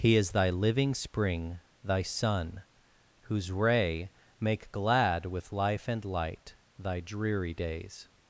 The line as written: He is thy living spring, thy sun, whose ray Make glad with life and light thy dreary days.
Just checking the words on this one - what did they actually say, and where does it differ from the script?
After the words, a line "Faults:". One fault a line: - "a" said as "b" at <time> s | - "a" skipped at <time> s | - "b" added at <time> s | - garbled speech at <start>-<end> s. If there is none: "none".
He is thy living spring, thy sun, whose ray Make glad with life and light thy dreary days.
Faults:
none